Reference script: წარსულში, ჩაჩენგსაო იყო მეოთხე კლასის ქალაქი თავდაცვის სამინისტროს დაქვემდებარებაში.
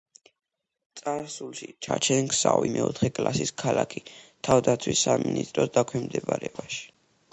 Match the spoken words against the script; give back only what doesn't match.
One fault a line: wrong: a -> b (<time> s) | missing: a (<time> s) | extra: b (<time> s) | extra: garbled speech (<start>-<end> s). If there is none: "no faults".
missing: იყო (2.6 s)